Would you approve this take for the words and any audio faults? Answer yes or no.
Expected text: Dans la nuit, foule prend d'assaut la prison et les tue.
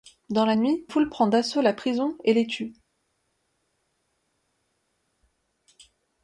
yes